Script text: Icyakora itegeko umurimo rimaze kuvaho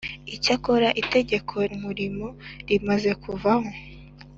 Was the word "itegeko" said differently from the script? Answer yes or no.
no